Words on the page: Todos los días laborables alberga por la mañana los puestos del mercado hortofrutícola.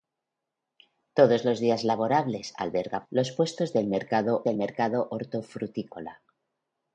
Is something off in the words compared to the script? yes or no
yes